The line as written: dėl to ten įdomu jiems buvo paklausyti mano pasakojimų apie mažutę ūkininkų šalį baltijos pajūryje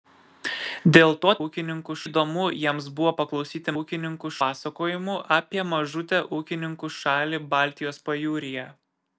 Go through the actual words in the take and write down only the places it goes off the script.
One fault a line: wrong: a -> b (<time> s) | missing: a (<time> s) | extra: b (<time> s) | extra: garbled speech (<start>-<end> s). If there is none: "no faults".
wrong: ten -> ūkininkų (1.5 s)
wrong: mano -> ūkininkų (3.8 s)